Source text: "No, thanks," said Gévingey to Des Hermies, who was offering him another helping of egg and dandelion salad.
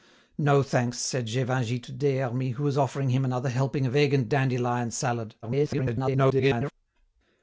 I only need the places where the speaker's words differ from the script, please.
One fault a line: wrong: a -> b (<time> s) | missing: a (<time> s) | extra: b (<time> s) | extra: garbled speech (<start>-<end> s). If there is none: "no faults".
extra: garbled speech (5.4-6.7 s)